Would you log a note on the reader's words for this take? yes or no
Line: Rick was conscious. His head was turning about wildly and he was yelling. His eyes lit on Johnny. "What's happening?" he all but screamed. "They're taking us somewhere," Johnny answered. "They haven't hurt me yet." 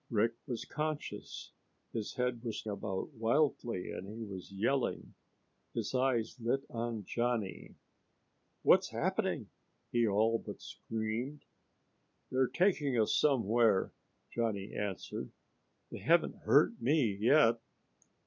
yes